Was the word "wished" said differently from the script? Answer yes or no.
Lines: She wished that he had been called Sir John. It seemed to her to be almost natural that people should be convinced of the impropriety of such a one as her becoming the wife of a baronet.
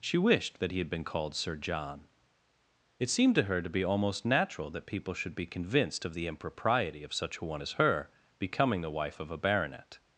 no